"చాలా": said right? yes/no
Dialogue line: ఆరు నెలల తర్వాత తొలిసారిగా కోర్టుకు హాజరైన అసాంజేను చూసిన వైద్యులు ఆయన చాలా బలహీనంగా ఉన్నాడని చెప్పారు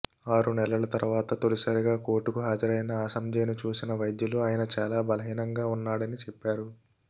yes